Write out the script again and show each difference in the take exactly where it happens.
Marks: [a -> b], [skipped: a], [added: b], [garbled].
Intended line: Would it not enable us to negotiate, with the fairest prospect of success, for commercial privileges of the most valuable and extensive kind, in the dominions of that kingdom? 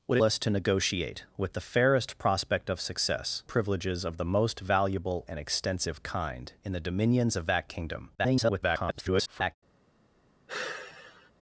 Would [skipped: it not enable] us to negotiate, with the fairest prospect of success, [skipped: for commercial] privileges of the most valuable and extensive kind, in the dominions of that kingdom? [garbled]